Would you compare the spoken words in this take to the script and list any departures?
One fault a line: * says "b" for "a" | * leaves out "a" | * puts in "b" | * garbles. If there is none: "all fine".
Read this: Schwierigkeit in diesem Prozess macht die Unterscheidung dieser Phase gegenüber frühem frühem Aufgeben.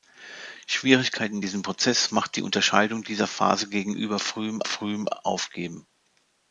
all fine